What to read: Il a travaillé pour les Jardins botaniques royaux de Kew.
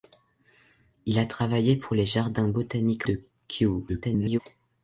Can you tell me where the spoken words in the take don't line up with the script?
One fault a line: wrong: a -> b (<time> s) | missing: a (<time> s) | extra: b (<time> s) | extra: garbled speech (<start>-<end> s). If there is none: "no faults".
missing: royaux (3.0 s)
extra: garbled speech (3.9-4.4 s)